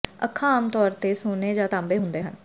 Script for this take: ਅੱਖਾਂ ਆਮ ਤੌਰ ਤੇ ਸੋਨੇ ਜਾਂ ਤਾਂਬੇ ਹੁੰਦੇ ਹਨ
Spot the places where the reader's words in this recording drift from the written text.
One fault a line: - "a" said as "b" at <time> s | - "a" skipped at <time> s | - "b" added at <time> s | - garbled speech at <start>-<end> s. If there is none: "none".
none